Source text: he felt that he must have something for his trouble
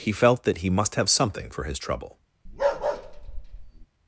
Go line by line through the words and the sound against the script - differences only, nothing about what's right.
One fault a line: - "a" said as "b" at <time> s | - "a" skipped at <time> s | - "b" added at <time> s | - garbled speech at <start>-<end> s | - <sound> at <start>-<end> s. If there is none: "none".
- bark at 2.5-3.9 s